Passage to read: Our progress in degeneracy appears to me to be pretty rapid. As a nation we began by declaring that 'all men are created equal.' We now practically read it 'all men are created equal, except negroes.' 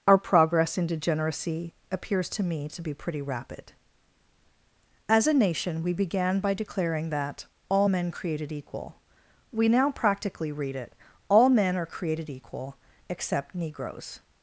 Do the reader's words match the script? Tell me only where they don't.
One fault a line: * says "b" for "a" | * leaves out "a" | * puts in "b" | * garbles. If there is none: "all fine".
* leaves out "are"